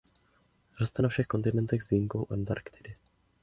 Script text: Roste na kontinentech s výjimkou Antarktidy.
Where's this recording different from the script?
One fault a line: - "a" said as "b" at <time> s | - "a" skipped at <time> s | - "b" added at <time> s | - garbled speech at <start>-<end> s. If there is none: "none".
- "všech" added at 1.1 s